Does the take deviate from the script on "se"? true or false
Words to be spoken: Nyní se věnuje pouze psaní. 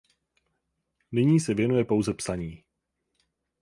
false